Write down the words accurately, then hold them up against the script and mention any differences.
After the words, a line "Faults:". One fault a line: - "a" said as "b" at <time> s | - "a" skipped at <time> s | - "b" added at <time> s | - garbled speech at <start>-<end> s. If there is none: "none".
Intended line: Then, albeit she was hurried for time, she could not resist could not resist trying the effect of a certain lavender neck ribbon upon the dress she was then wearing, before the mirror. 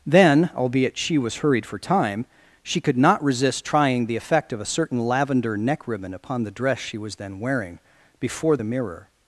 Then, albeit she was hurried for time, she could not resist trying the effect of a certain lavender neck ribbon upon the dress she was then wearing, before the mirror.
Faults:
- "could not resist" skipped at 3.6 s